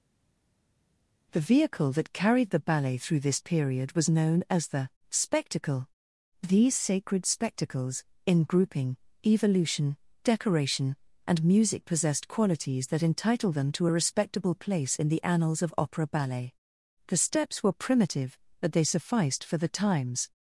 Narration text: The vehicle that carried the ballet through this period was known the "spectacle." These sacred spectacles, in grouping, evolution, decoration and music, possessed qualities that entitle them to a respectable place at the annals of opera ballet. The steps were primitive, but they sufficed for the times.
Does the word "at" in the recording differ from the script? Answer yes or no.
yes